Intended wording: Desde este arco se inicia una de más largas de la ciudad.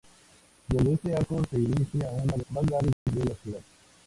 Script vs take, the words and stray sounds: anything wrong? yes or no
yes